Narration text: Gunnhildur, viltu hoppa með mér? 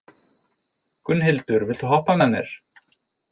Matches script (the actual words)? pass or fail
pass